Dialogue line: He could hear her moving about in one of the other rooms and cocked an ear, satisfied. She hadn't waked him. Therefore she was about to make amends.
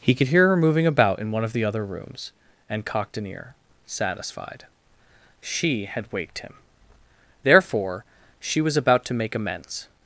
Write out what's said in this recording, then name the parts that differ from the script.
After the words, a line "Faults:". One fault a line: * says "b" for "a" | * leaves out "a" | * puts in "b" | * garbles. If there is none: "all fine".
He could hear her moving about in one of the other rooms and cocked an ear, satisfied. She had waked him. Therefore she was about to make amends.
Faults:
* says "had" for "hadn't"